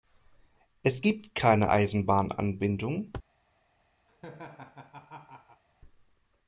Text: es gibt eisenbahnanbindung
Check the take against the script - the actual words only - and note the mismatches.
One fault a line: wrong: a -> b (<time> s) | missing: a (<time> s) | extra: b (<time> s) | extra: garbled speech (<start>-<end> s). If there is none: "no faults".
extra: keine (1.3 s)